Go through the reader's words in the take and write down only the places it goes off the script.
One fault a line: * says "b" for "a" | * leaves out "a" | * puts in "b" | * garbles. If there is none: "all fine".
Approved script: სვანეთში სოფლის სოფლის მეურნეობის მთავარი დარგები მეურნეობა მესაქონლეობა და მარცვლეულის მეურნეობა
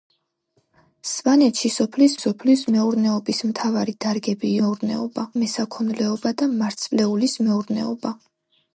all fine